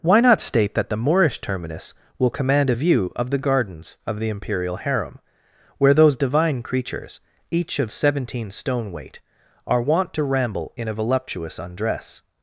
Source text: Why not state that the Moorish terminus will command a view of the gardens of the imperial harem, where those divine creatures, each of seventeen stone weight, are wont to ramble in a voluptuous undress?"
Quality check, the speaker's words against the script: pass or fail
pass